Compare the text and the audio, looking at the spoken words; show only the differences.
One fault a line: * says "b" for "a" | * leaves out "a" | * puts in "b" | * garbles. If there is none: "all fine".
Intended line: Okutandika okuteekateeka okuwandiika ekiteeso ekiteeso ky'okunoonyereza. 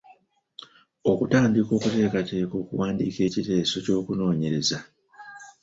* leaves out "ekiteeso"